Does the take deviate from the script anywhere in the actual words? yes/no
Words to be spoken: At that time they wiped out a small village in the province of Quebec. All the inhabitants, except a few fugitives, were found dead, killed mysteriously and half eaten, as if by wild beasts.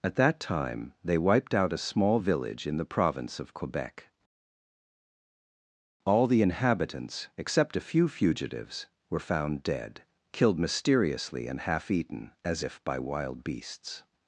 no